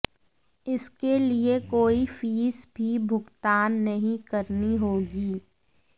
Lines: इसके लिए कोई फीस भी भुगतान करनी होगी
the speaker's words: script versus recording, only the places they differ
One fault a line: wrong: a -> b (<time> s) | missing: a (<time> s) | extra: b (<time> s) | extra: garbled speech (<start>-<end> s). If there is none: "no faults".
extra: नहीं (3.8 s)